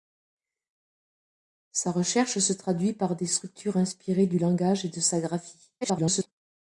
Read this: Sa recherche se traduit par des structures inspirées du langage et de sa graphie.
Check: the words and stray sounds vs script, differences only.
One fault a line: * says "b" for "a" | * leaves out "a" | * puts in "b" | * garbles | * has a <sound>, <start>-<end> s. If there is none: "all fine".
* garbles